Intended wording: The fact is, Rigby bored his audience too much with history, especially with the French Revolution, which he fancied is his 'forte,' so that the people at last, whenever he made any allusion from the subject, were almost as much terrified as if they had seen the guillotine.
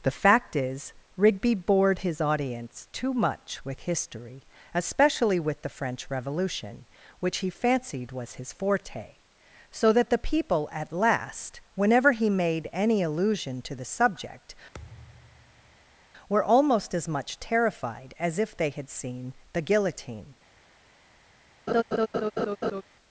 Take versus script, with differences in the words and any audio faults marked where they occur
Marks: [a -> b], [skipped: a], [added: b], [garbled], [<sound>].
The fact is, Rigby bored his audience too much with history, especially with the French Revolution, which he fancied [is -> was] his 'forte,' so that the people at last, whenever he made any allusion [from -> to] the subject, [thud] were almost as much terrified as if they had seen the guillotine. [laugh]